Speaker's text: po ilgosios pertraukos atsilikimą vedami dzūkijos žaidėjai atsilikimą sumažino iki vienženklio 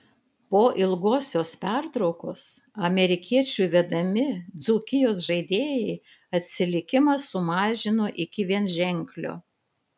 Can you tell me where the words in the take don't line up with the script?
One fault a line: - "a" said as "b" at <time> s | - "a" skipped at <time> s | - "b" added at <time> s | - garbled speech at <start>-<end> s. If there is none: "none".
- "atsilikimą" said as "amerikiečių" at 2.9 s